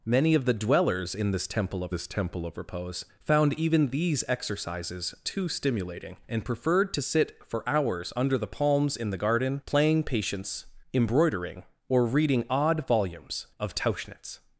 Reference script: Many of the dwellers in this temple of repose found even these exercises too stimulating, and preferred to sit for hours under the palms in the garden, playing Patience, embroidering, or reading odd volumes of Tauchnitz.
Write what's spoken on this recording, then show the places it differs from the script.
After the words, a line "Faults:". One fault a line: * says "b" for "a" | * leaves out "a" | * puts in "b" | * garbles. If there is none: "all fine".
Many of the dwellers in this temple of this temple of repose found even these exercises too stimulating, and preferred to sit for hours under the palms in the garden, playing Patience, embroidering, or reading odd volumes of Tauchnitz.
Faults:
* puts in "this temple of"